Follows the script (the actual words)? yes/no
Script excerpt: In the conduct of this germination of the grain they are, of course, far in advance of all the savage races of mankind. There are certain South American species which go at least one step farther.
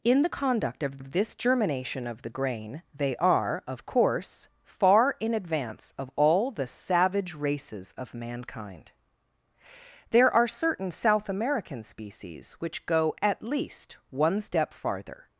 no